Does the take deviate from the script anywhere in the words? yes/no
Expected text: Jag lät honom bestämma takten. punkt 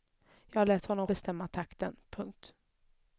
no